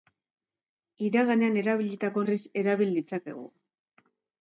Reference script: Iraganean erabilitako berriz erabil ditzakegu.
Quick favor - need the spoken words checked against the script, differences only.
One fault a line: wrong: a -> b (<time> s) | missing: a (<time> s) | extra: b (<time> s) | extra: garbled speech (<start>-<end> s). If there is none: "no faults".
no faults